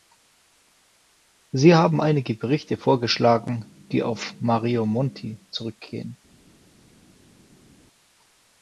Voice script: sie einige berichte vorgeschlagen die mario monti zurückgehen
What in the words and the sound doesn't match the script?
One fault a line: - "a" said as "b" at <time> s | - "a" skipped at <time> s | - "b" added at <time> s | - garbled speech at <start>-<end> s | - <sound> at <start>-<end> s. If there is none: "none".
- "haben" added at 1.8 s
- "auf" added at 4.0 s